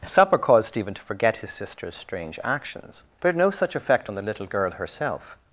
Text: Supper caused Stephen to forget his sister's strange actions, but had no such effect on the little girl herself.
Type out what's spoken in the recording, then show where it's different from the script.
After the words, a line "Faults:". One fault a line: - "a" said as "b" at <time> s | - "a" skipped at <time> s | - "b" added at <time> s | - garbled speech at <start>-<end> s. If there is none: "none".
Supper caused Stephen to forget his sister's strange actions, but had no such effect on the little girl herself.
Faults:
none